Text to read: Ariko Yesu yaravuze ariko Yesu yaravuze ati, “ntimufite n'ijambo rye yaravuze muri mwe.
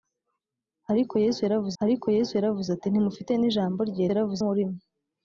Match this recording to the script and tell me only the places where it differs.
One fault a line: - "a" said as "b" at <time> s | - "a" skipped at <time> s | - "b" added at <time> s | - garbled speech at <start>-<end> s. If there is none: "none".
none